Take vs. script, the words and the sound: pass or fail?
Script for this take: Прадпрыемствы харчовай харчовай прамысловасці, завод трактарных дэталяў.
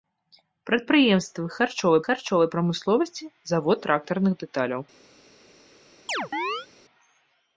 fail